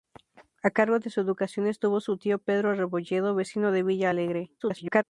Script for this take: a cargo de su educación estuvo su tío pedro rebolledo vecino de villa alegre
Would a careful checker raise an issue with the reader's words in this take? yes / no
yes